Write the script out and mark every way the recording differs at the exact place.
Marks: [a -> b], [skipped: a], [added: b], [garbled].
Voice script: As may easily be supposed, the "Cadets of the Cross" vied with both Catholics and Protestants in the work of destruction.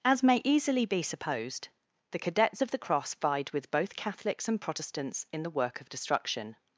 As may easily be supposed, the "Cadets of the Cross" vied with both Catholics and Protestants in the work of destruction.